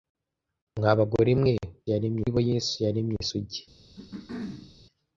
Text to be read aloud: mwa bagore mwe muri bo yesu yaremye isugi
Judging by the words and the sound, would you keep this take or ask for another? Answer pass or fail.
fail